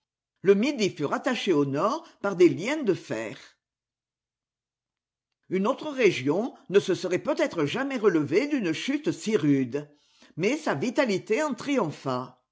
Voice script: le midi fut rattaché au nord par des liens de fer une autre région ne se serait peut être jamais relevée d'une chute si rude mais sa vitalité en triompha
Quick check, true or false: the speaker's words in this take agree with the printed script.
true